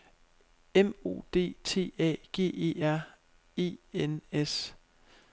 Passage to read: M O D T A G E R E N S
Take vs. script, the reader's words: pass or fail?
pass